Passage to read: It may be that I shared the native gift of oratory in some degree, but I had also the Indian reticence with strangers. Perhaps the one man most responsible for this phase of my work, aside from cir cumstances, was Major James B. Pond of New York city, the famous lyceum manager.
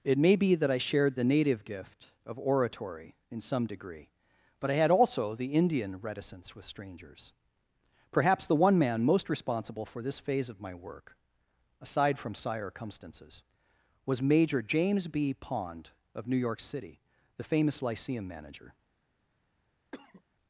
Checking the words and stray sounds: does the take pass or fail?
fail